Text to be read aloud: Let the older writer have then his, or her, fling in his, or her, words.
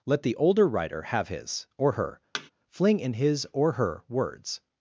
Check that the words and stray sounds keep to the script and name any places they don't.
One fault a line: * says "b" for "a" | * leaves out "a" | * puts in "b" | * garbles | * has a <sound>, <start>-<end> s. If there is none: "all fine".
* leaves out "then"
* has a thud, 2.3-2.5 s